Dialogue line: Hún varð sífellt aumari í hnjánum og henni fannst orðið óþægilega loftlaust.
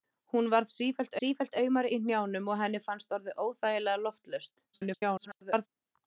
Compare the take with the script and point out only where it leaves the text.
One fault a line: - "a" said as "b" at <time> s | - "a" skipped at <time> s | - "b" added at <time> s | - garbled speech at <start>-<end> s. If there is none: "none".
- "sífellt" added at 1.2 s
- garbled speech at 4.7-5.7 s